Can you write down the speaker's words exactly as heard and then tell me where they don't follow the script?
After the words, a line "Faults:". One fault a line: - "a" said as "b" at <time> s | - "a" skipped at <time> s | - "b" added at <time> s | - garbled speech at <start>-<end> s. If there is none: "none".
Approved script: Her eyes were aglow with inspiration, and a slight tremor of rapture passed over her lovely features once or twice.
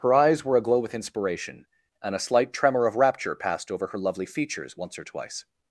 Her eyes were aglow with inspiration, and a slight tremor of rapture passed over her lovely features once or twice.
Faults:
none